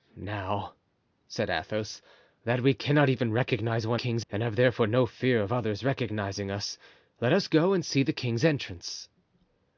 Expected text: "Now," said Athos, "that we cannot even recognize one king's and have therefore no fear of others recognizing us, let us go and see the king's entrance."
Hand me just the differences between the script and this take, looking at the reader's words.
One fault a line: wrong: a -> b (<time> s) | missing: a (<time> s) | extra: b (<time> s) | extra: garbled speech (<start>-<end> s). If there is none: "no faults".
no faults